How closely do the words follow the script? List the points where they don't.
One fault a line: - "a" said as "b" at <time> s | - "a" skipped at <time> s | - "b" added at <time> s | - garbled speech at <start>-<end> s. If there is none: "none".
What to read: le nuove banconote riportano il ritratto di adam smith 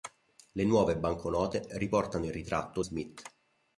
- "di adam" skipped at 2.8 s